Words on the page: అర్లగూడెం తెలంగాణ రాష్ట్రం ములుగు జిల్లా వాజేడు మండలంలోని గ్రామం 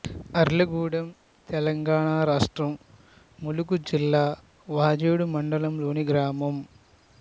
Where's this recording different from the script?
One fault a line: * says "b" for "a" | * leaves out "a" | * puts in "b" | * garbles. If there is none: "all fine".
all fine